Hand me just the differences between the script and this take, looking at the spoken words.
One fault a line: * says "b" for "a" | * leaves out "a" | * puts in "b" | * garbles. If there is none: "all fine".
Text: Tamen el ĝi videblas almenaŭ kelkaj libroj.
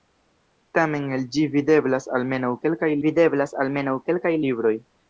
* puts in "videblas almenaŭ kelkaj"